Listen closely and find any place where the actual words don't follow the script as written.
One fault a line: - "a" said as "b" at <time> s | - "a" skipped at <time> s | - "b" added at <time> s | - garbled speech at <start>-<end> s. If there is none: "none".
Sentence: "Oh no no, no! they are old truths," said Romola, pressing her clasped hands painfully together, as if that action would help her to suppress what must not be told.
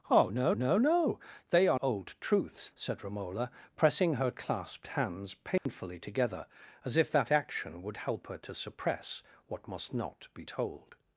none